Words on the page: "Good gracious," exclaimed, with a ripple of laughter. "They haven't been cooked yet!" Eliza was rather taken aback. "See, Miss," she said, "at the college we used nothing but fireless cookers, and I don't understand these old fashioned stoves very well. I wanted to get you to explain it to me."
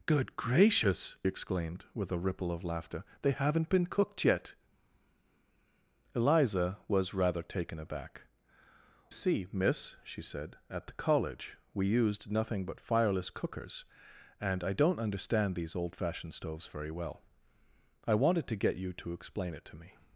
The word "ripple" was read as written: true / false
true